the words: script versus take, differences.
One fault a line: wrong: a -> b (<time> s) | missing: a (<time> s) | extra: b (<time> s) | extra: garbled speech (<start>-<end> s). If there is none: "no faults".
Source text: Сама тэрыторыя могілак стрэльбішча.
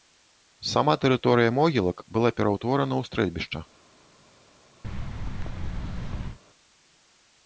extra: была пераўтворана ў (2.2 s)